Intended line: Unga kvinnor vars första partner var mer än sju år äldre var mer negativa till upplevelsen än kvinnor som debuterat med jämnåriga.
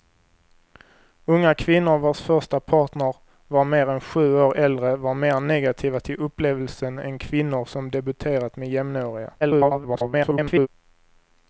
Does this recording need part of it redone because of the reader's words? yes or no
yes